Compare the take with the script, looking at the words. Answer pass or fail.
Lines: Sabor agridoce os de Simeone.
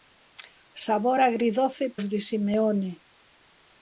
pass